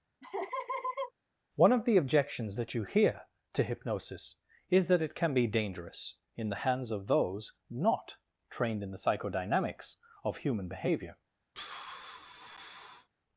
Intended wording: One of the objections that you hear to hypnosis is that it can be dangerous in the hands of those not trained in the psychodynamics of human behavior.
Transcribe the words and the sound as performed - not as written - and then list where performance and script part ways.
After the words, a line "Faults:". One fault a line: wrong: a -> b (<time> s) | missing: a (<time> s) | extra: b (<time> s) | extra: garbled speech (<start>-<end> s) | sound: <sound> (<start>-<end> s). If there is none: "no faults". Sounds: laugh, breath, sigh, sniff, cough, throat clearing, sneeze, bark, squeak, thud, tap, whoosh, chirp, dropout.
One of the objections that you hear to hypnosis is that it can be dangerous in the hands of those not trained in the psychodynamics of human behavior.
Faults:
sound: laugh (0.2-1.1 s)
sound: sigh (11.5-13.1 s)